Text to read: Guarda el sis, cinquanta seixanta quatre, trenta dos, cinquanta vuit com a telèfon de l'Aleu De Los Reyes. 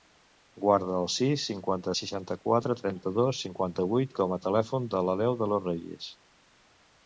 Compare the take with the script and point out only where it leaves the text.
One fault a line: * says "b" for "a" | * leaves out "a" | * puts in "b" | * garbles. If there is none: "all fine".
all fine